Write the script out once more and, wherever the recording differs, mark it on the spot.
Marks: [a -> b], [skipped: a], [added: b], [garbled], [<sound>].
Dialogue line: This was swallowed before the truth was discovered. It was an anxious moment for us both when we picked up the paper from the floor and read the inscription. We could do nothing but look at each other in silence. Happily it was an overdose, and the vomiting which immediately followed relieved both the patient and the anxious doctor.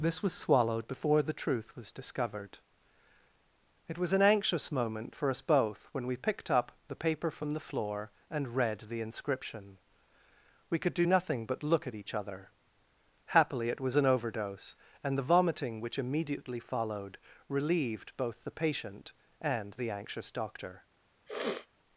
This was swallowed before the truth was discovered. It was an anxious moment for us both when we picked up the paper from the floor and read the inscription. We could do nothing but look at each other [skipped: in silence.] Happily it was an overdose, and the vomiting which immediately followed relieved both the patient and the anxious doctor. [sniff]